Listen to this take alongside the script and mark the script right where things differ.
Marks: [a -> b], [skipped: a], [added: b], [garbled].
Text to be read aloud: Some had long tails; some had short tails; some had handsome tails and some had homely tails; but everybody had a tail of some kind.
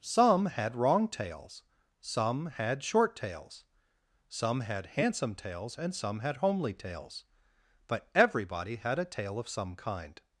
Some had [long -> wrong] tails; some had short tails; some had handsome tails and some had homely tails; but everybody had a tail of some kind.